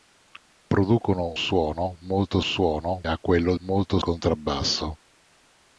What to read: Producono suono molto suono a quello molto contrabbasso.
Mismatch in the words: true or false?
false